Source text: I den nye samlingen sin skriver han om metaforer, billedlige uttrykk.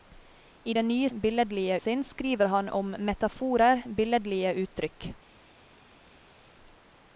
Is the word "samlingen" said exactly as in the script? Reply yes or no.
no